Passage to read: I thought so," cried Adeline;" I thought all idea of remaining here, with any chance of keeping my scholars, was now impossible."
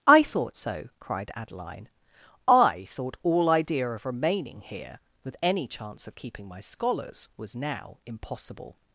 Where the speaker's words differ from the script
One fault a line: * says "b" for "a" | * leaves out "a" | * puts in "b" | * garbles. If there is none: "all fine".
all fine